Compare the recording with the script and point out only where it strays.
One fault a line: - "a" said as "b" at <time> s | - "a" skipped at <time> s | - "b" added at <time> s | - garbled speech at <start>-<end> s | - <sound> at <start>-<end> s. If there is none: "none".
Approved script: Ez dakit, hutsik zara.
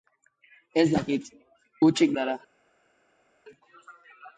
none